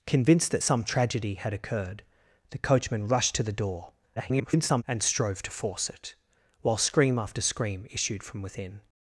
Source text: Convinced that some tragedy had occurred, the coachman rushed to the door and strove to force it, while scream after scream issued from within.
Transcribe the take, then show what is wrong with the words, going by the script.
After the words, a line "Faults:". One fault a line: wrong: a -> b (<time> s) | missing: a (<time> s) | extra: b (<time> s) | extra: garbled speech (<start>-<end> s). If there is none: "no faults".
Convinced that some tragedy had occurred, the coachman rushed to the door [garbled] and strove to force it, while scream after scream issued from within.
Faults:
extra: garbled speech (4.2-4.8 s)